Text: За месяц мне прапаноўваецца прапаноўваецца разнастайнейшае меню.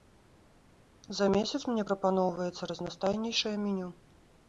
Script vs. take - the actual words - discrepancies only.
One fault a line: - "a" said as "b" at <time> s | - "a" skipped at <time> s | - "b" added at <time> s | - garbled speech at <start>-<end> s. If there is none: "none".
- "прапаноўваецца" skipped at 2.7 s